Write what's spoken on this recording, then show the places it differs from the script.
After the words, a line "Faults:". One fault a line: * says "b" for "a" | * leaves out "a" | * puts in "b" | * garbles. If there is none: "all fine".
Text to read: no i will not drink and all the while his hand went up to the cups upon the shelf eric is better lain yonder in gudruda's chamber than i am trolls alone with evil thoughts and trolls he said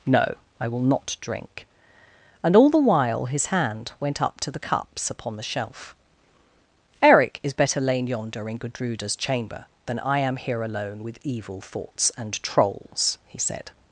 no i will not drink and all the while his hand went up to the cups upon the shelf eric is better lain yonder in gudruda's chamber than i am here alone with evil thoughts and trolls he said
Faults:
* says "here" for "trolls"